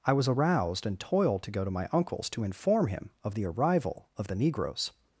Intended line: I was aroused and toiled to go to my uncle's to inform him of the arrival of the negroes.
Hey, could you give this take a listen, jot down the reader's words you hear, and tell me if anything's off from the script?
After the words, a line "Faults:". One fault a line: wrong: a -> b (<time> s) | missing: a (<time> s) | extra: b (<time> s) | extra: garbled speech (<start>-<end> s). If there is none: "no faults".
I was aroused and toiled to go to my uncle's to inform him of the arrival of the negroes.
Faults:
no faults